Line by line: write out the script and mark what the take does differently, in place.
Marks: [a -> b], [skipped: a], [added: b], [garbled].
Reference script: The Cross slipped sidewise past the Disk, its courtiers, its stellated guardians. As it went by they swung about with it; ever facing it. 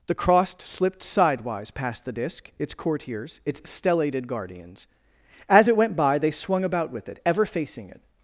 The Cross slipped sidewise past the Disk, its courtiers, its stellated guardians. As it went by they swung about with it; ever facing it.